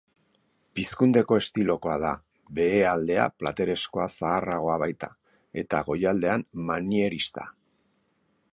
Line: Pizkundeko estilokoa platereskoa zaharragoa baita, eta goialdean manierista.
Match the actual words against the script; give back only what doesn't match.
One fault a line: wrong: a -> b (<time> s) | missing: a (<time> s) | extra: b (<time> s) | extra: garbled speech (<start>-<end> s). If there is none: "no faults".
extra: da behealdea (2.0 s)